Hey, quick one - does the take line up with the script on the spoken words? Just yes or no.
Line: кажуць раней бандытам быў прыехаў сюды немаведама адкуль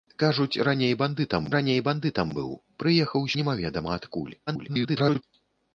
no